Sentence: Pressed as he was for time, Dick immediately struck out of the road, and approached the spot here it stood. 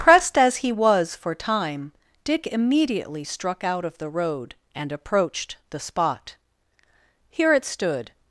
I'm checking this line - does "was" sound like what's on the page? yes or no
yes